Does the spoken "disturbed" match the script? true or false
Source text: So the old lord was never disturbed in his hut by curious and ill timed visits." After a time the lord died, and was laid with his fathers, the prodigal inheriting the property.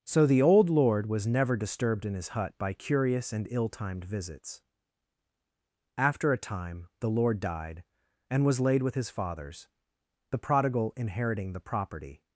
true